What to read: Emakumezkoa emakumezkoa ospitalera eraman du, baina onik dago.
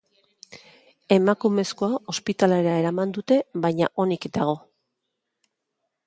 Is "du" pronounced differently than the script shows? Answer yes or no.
yes